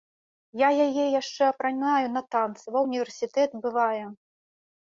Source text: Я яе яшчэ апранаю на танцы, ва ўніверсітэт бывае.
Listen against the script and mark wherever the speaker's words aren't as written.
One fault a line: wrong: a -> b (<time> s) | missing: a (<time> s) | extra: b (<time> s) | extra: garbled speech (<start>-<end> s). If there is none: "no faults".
no faults